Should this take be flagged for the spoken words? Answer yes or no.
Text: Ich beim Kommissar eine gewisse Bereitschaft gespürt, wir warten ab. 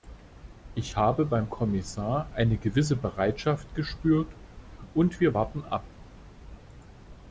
yes